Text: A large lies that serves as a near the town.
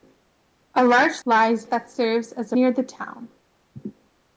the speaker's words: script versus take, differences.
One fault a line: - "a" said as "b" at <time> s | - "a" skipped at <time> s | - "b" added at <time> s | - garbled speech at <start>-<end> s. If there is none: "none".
none